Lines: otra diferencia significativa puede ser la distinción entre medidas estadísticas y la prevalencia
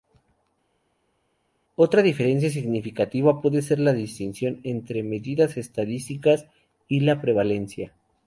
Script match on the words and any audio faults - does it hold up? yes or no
yes